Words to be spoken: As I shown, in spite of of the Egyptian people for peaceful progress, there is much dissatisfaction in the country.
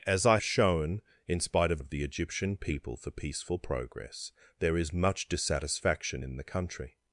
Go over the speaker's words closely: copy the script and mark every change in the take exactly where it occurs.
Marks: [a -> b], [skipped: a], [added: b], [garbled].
As I shown, in spite of of the Egyptian people for peaceful progress, there is much dissatisfaction in the country.